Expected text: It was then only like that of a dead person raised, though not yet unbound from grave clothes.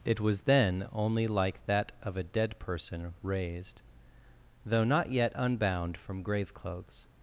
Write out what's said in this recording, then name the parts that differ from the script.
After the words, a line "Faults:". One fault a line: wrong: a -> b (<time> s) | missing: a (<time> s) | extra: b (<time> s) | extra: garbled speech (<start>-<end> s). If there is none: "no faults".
It was then only like that of a dead person raised, though not yet unbound from grave clothes.
Faults:
no faults